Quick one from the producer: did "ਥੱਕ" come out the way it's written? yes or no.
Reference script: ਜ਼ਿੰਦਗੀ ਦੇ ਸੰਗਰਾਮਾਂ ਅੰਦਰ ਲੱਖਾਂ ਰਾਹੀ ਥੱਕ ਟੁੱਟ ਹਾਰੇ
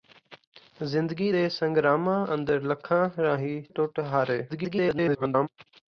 no